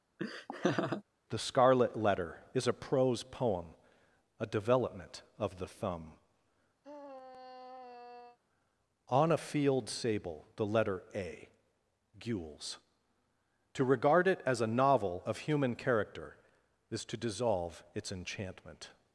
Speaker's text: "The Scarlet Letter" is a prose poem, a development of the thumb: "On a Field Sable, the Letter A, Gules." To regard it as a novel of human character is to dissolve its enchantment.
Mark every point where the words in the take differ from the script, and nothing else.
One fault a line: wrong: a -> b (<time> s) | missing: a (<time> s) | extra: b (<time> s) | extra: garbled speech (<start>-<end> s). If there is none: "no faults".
no faults